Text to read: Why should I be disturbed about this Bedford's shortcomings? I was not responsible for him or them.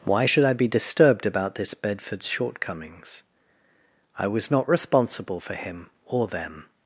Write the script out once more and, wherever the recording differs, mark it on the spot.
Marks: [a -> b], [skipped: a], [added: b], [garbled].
Why should I be disturbed about this Bedford's shortcomings? I was not responsible for him or them.